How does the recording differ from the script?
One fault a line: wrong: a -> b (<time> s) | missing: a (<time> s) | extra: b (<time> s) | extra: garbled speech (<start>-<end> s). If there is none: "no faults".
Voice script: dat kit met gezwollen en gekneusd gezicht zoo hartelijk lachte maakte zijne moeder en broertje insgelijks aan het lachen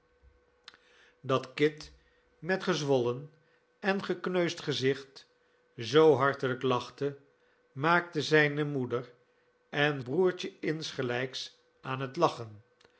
no faults